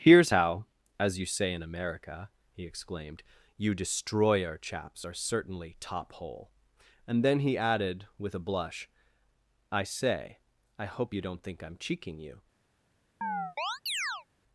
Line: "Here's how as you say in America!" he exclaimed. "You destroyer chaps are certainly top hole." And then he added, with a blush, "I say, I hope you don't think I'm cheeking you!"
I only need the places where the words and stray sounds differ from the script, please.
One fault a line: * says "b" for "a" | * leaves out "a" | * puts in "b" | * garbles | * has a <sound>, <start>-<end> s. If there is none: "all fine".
* has a chirp, 13.2-14.3 s